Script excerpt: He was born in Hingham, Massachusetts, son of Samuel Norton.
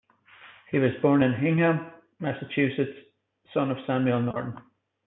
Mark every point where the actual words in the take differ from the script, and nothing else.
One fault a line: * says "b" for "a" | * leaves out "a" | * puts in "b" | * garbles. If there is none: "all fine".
all fine